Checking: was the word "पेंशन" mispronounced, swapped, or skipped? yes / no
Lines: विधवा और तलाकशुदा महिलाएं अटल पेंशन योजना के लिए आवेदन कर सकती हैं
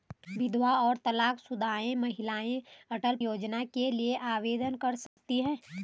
yes